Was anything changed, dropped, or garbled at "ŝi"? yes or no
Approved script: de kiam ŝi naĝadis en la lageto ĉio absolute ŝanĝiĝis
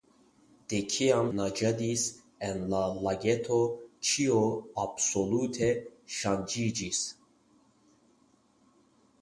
yes